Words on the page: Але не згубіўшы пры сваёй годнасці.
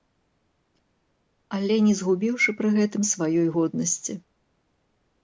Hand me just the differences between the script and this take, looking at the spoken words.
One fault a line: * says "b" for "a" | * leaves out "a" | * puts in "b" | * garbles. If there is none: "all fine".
* puts in "гэтым"